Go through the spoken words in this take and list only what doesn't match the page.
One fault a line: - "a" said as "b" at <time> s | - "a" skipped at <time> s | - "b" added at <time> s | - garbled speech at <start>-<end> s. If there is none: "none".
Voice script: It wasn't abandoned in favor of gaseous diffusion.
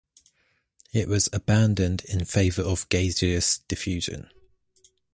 - "wasn't" said as "was" at 1.1 s